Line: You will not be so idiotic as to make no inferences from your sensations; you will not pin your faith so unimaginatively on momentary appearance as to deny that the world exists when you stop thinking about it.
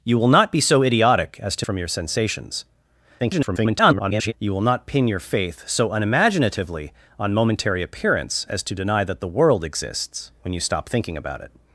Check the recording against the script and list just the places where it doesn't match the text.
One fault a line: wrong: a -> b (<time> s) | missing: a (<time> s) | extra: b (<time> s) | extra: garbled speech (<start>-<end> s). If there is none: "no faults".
missing: make no inferences (1.6 s)
extra: garbled speech (3.2-4.3 s)